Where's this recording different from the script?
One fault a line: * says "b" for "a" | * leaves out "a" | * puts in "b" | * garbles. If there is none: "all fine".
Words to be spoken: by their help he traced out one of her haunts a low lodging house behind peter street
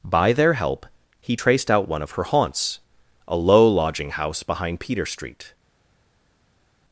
all fine